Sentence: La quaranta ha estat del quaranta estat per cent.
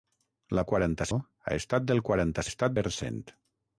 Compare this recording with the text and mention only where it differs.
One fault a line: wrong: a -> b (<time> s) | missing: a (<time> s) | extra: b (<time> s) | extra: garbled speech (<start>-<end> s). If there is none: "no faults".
no faults